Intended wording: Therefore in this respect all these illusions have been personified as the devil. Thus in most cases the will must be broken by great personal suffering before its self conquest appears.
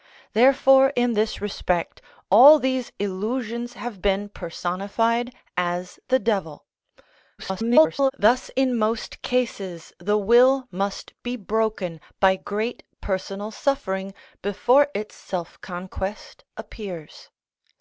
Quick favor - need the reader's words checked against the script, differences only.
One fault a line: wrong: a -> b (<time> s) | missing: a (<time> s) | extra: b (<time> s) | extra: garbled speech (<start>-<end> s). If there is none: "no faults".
extra: garbled speech (7.4-8.1 s)